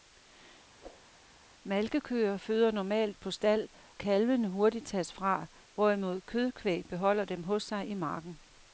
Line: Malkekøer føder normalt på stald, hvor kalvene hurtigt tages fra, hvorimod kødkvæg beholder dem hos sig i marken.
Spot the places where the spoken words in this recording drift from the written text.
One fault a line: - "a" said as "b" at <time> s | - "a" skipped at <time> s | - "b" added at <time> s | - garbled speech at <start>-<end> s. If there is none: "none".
- "hvor" skipped at 3.7 s